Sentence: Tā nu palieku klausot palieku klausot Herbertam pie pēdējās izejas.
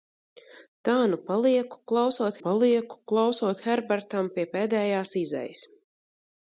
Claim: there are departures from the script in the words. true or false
false